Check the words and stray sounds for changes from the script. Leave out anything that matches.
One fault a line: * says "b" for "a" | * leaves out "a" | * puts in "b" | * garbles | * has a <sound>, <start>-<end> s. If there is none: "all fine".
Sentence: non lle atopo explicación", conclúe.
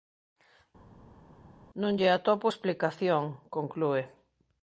all fine